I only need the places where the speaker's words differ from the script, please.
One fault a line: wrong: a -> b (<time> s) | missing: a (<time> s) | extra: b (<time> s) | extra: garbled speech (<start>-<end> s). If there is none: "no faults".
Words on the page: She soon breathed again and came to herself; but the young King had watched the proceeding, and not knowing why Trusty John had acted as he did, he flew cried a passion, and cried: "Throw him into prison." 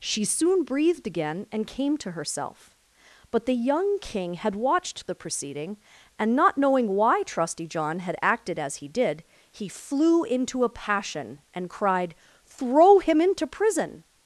wrong: cried -> into (10.2 s)